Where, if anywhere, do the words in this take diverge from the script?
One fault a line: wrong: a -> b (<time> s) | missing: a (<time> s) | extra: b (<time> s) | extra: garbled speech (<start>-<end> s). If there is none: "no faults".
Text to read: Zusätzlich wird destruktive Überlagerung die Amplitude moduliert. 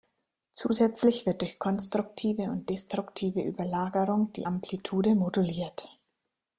extra: durch konstruktive und (1.4 s)